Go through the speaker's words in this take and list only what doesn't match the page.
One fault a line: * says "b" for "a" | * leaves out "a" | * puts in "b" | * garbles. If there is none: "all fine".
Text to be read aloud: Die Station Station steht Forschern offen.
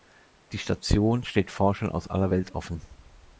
* leaves out "Station"
* puts in "aus aller Welt"